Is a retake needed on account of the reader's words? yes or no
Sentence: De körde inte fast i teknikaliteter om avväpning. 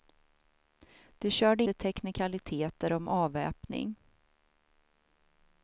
yes